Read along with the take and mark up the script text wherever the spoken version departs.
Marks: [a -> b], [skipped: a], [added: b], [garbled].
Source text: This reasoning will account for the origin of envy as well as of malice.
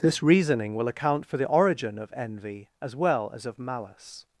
This reasoning will account for the origin of envy as well as of malice.